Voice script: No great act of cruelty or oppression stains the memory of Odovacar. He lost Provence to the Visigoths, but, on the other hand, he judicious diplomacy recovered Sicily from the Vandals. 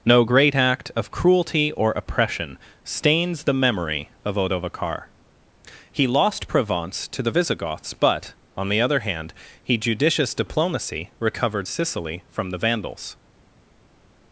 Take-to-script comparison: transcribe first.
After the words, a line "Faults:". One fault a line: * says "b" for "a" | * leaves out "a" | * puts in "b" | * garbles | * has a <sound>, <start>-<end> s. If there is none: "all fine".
No great act of cruelty or oppression stains the memory of Odovacar. He lost Provence to the Visigoths, but, on the other hand, he judicious diplomacy recovered Sicily from the Vandals.
Faults:
all fine